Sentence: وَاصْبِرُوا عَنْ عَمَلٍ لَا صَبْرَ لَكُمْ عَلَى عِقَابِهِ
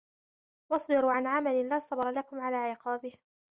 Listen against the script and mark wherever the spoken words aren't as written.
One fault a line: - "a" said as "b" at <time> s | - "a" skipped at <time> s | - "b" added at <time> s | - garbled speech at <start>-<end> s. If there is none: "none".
none